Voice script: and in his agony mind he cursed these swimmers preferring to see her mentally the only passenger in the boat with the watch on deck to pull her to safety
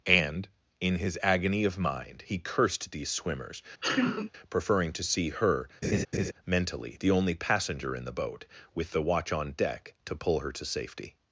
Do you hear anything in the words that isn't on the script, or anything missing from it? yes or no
yes